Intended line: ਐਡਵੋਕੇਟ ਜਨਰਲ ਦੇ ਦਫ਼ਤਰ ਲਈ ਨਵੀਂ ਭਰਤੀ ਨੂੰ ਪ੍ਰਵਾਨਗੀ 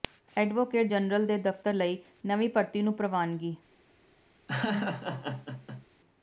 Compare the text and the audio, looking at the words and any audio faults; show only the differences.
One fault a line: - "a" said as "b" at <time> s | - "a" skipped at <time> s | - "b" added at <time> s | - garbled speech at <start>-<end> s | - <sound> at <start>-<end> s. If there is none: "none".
- laugh at 4.5-5.9 s